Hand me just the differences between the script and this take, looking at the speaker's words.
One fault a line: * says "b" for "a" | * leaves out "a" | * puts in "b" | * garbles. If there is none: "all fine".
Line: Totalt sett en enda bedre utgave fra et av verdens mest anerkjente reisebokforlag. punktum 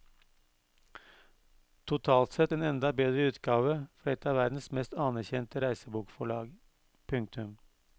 all fine